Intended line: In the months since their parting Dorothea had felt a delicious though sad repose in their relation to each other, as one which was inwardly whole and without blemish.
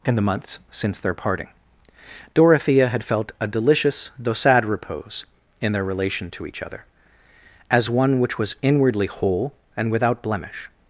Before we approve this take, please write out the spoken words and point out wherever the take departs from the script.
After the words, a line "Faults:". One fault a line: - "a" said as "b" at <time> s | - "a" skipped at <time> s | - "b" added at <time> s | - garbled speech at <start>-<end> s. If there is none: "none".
In the months since their parting Dorothea had felt a delicious though sad repose in their relation to each other, as one which was inwardly whole and without blemish.
Faults:
none